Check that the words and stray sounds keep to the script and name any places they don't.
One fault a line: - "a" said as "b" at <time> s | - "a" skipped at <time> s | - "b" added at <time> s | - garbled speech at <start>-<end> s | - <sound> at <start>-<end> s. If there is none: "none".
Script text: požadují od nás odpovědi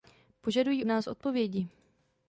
- "od" skipped at 0.8 s